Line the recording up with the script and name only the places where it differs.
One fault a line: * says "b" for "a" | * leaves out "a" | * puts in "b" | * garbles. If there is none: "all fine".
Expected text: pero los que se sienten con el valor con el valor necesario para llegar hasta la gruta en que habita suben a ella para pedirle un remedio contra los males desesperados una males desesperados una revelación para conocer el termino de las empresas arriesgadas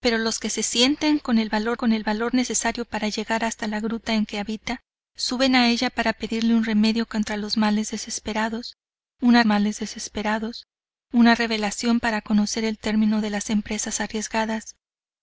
all fine